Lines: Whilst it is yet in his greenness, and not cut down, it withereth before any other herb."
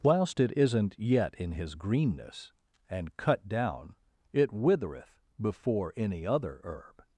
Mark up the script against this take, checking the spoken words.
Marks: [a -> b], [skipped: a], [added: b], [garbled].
Whilst it [is -> isn't] yet in his greenness, and [skipped: not] cut down, it withereth before any other herb."